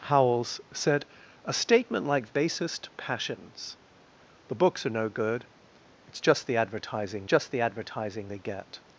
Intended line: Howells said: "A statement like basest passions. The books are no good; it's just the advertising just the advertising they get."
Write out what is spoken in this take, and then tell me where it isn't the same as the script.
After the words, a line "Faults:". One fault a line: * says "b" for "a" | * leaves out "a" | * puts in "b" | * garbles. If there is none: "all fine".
Howells said: "A statement like basest passions. The books are no good; it's just the advertising just the advertising they get."
Faults:
all fine